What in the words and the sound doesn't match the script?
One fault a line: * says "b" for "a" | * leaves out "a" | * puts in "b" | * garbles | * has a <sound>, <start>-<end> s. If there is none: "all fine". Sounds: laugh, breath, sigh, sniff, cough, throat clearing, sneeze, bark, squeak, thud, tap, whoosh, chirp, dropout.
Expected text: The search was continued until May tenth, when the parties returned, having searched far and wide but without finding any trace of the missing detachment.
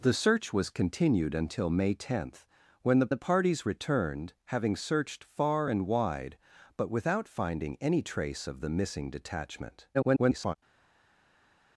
* puts in "the"
* garbles